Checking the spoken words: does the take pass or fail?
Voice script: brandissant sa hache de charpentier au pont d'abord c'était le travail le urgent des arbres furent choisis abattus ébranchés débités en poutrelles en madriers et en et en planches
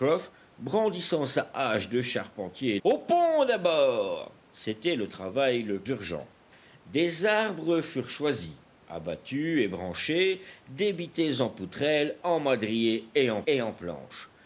pass